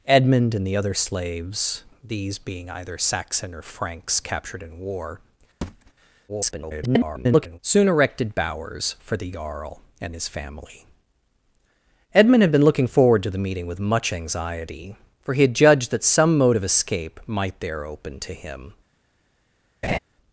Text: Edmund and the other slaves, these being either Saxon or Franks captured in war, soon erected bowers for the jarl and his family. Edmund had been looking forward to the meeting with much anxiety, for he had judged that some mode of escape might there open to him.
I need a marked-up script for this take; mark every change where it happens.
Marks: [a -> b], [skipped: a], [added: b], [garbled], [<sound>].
Edmund and the other slaves, these being either Saxon or Franks captured in war, [thud] [garbled] soon erected bowers for the jarl and his family. Edmund had been looking forward to the meeting with much anxiety, for he had judged that some mode of escape might there open to him. [laugh]